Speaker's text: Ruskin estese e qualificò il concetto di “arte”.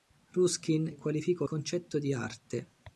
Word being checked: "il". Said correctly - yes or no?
no